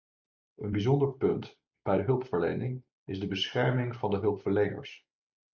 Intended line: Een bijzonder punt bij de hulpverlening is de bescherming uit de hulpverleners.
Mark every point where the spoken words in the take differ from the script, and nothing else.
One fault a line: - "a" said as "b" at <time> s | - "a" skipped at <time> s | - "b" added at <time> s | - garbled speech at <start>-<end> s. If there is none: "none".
- "uit" said as "van" at 4.0 s